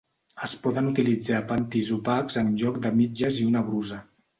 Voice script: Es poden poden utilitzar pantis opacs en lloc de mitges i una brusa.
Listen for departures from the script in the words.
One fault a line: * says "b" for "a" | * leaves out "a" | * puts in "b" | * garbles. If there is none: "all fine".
* leaves out "poden"